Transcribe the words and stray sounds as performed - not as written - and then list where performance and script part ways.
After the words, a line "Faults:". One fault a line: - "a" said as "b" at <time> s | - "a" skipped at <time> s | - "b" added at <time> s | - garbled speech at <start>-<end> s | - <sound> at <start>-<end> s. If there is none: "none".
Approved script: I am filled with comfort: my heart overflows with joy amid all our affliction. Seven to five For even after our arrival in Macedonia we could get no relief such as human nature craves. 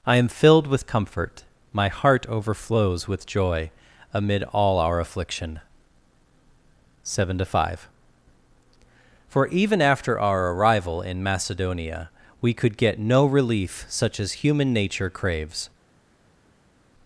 I am filled with comfort: my heart overflows with joy amid all our affliction. Seven to five For even after our arrival in Macedonia we could get no relief such as human nature craves.
Faults:
none